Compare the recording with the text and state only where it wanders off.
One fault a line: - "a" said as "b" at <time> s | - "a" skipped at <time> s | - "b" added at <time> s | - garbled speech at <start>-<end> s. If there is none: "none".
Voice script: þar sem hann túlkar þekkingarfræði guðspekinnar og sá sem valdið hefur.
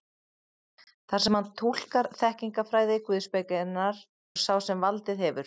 none